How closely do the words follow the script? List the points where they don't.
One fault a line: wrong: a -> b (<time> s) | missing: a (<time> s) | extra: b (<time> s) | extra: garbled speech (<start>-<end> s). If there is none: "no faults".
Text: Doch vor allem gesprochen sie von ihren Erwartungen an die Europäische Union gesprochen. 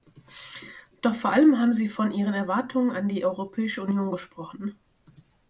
wrong: gesprochen -> haben (1.6 s)